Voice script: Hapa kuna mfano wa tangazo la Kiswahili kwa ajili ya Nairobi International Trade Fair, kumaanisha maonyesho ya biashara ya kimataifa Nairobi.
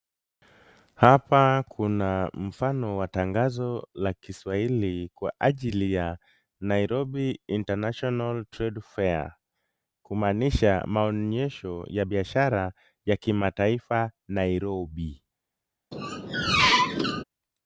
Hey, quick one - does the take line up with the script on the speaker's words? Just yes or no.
yes